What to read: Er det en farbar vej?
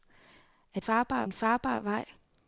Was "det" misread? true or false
true